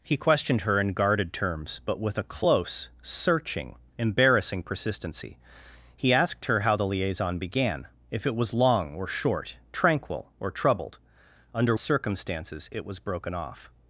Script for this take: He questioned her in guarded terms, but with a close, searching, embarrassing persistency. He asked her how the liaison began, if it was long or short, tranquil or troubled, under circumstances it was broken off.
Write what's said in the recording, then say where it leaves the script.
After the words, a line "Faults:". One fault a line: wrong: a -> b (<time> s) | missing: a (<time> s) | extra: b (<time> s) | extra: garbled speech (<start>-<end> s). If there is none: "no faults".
He questioned her in guarded terms, but with a close, searching, embarrassing persistency. He asked her how the liaison began, if it was long or short, tranquil or troubled, under circumstances it was broken off.
Faults:
no faults